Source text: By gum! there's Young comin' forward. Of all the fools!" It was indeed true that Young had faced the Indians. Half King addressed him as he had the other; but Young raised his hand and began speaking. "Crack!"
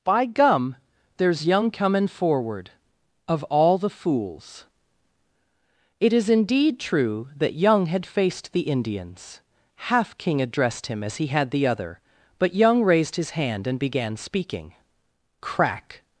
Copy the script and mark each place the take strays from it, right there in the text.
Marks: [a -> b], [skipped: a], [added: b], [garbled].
By gum! there's Young comin' forward. Of all the fools!" It [was -> is] indeed true that Young had faced the Indians. Half King addressed him as he had the other; but Young raised his hand and began speaking. "Crack!"